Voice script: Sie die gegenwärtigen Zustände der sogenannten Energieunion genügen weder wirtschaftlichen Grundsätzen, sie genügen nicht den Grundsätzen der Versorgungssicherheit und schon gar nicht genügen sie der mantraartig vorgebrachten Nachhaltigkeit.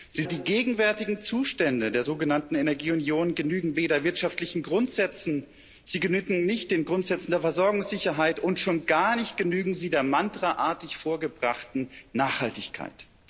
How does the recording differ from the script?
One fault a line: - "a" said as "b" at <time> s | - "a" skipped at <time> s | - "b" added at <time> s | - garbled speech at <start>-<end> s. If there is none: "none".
none